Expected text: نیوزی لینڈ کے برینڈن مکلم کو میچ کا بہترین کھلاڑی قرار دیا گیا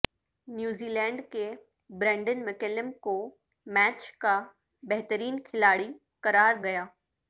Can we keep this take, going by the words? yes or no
no